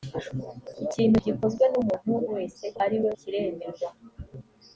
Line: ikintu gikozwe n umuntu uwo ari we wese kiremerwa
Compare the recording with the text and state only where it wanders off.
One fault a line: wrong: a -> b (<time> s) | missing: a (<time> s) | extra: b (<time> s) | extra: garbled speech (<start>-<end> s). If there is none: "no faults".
wrong: uwo -> wese (2.3 s)
missing: wese (3.1 s)